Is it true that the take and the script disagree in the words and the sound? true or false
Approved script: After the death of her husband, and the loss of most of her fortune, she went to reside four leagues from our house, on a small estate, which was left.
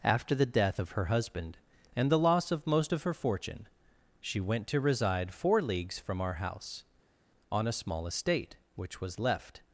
false